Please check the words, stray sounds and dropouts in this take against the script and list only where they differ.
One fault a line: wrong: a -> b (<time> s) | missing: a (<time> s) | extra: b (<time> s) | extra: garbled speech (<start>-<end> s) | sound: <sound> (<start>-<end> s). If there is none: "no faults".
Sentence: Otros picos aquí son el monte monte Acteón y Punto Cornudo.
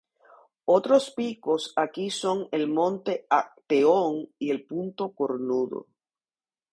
missing: monte (3.3 s)
extra: el (4.5 s)